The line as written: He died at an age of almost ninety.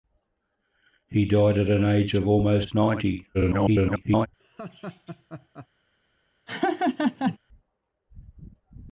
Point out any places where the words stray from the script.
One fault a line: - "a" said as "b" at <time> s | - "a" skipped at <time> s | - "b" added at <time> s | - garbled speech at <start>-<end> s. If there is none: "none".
- garbled speech at 3.3-4.3 s